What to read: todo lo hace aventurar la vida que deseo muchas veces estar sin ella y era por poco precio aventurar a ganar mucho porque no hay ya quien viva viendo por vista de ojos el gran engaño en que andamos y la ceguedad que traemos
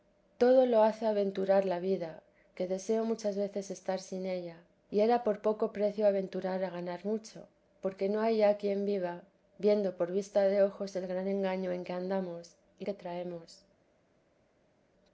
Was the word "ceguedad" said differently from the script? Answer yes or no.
yes